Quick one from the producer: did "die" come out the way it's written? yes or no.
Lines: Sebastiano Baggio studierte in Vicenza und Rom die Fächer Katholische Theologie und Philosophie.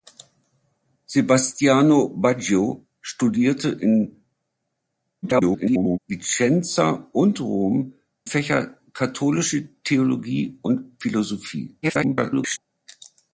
no